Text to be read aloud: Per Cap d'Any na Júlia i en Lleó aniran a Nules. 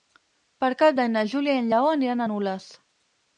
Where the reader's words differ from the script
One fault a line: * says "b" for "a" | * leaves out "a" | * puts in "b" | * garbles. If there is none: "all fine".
all fine